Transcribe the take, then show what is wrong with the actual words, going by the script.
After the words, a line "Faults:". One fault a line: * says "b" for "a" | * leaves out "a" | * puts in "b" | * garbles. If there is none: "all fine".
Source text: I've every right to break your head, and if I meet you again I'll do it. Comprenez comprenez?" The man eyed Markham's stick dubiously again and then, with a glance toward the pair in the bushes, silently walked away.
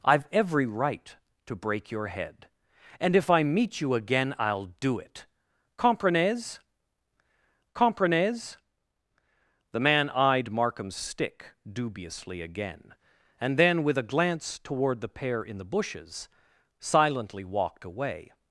I've every right to break your head, and if I meet you again I'll do it. Comprenez comprenez?" The man eyed Markham's stick dubiously again and then, with a glance toward the pair in the bushes, silently walked away.
Faults:
all fine